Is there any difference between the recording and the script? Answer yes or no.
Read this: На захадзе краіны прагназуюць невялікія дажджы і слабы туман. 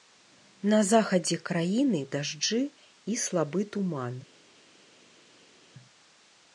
yes